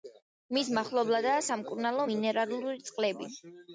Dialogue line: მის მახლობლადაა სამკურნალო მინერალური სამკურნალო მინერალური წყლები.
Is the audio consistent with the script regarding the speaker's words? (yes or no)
no